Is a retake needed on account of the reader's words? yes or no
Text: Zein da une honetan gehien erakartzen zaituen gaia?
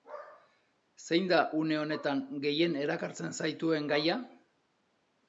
no